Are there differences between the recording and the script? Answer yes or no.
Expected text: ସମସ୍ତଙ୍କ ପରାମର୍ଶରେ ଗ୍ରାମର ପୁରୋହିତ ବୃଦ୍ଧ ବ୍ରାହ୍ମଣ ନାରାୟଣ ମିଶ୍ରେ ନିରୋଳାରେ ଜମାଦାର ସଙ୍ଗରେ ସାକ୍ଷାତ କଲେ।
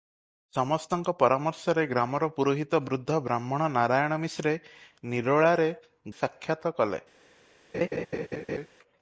yes